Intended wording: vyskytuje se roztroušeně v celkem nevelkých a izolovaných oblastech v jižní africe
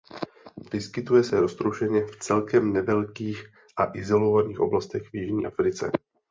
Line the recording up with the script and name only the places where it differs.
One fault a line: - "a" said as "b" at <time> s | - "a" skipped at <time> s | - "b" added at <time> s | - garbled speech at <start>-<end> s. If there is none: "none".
none